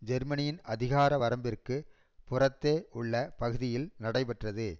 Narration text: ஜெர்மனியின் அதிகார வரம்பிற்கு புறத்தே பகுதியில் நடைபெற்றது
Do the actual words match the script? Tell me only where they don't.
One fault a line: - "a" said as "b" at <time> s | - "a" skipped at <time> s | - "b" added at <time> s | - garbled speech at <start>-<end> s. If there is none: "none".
- "உள்ள" added at 2.9 s